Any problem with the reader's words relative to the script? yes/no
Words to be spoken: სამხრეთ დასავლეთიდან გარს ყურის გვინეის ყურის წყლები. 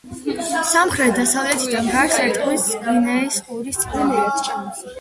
yes